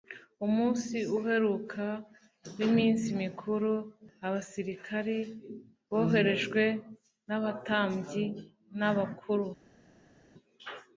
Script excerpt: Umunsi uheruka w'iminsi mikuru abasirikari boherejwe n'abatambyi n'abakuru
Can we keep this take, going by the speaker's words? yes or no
yes